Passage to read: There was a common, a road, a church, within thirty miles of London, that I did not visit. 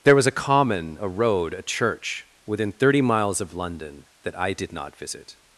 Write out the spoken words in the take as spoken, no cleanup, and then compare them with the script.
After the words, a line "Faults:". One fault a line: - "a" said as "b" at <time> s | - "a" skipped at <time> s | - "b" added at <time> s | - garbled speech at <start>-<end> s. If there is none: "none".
There was a common, a road, a church, within thirty miles of London, that I did not visit.
Faults:
none